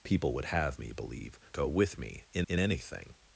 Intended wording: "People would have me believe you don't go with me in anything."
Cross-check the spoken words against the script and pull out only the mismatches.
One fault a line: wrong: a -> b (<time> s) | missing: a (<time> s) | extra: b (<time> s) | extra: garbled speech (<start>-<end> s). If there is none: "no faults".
missing: you don't (1.4 s)
extra: in (2.5 s)